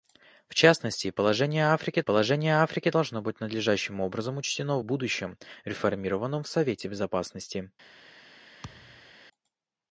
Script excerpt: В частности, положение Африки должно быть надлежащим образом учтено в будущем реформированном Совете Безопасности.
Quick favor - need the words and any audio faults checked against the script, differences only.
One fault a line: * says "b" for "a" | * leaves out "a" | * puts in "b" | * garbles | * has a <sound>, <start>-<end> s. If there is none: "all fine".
* puts in "положение Африки"
* has a thud, 8.6-9.1 s